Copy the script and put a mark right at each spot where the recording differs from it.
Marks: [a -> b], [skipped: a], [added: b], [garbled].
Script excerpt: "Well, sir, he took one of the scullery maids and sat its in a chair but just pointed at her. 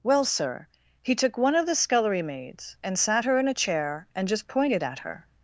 "Well, sir, he took one of the scullery maids and sat [its -> her] in a chair [but -> and] just pointed at her.